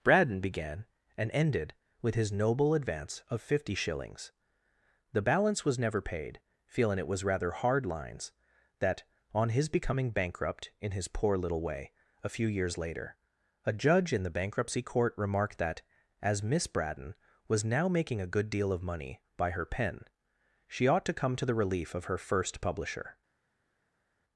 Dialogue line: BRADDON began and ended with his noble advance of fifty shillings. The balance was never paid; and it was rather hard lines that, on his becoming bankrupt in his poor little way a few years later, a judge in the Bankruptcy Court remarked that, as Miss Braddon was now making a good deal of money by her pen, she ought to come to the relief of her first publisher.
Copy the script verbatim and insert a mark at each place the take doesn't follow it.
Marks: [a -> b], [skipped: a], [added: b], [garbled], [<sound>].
BRADDON began and ended with his noble advance of fifty shillings. The balance was never paid; [and -> feeling] it was rather hard lines that, on his becoming bankrupt in his poor little way a few years later, a judge in the Bankruptcy Court remarked that, as Miss Braddon was now making a good deal of money by her pen, she ought to come to the relief of her first publisher.